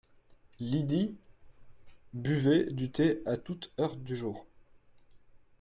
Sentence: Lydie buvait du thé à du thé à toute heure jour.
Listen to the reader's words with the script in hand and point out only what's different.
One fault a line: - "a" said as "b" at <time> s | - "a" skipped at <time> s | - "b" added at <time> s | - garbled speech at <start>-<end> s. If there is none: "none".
- "du thé à" skipped at 3.4 s
- "du" added at 4.0 s